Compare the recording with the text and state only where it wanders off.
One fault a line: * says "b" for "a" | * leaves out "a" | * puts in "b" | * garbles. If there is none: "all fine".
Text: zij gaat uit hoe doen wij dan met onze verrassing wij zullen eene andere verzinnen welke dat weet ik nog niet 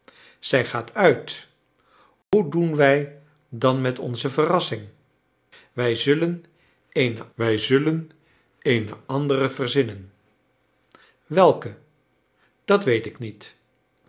* puts in "wij zullen eene"
* leaves out "nog"